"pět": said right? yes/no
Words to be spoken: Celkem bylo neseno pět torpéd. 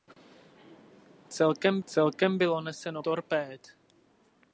no